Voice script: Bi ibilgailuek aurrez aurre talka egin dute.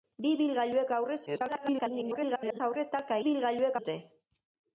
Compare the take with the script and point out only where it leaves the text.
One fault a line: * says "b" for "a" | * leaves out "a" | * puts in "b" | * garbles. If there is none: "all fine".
* garbles
* says "ibilgailuek" for "egin"